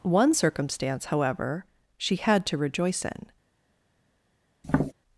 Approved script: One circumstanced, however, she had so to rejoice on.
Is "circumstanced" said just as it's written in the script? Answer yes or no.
no